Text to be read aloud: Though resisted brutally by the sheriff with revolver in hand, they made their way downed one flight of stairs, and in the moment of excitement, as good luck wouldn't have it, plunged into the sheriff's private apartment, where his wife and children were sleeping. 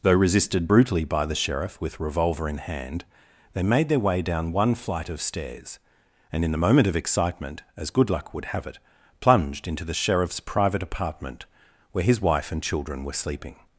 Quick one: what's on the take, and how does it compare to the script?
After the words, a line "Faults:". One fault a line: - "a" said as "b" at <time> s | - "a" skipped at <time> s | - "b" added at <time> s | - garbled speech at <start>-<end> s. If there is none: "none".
Though resisted brutally by the sheriff with revolver in hand, they made their way down one flight of stairs, and in the moment of excitement, as good luck would have it, plunged into the sheriff's private apartment, where his wife and children were sleeping.
Faults:
- "downed" said as "down" at 4.2 s
- "wouldn't" said as "would" at 8.3 s